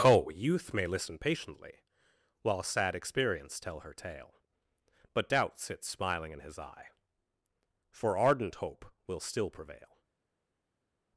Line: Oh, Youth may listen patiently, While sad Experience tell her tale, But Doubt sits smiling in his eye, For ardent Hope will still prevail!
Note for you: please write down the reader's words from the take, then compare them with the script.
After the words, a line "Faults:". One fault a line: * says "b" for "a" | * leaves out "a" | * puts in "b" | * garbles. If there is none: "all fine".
Oh, Youth may listen patiently, While sad Experience tell her tale, But Doubt sits smiling in his eye, For ardent Hope will still prevail!
Faults:
all fine